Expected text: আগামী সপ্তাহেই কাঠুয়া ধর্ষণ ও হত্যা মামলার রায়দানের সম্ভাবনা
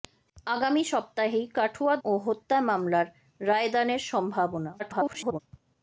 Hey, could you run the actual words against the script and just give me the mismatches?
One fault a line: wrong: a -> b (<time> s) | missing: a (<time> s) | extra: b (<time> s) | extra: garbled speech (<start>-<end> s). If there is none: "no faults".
missing: ধর্ষণ (1.9 s)
extra: garbled speech (4.8-5.4 s)